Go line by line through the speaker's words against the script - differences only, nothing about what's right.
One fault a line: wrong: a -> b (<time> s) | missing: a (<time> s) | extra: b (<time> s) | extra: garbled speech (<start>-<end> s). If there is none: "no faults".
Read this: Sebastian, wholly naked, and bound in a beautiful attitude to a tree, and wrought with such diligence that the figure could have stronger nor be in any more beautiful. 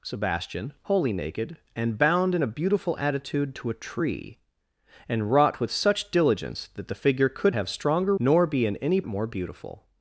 no faults